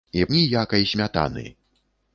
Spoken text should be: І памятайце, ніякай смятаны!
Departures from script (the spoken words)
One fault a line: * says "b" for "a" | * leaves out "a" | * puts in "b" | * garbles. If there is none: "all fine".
* leaves out "памятайце"